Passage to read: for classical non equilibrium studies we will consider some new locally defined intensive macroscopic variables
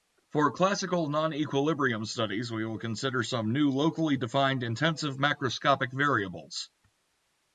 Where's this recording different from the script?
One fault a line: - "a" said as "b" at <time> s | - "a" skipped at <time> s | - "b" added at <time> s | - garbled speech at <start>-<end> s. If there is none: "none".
none